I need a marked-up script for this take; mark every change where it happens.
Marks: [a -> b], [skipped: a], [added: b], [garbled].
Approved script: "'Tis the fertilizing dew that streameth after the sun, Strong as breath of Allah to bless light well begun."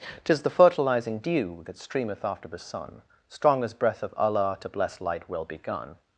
"'Tis the fertilizing dew that streameth after the sun, Strong as breath of Allah to bless light well begun."